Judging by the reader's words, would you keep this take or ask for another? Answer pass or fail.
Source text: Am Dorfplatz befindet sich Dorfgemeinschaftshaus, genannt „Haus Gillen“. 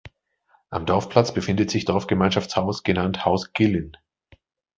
pass